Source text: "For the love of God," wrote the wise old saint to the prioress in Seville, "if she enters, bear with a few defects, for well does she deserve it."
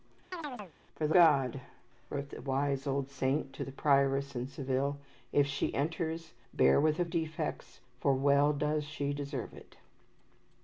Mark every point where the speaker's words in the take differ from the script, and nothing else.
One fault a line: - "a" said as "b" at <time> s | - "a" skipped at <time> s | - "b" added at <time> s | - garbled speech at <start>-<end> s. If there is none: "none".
- "love of" skipped at 1.1 s
- "few" skipped at 7.0 s